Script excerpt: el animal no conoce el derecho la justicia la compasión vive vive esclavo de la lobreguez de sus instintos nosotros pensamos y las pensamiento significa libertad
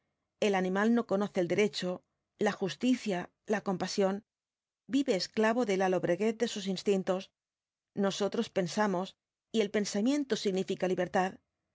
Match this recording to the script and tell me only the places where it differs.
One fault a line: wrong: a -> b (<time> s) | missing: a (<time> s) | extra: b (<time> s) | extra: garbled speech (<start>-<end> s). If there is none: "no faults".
missing: vive (5.2 s)
wrong: las -> el (9.6 s)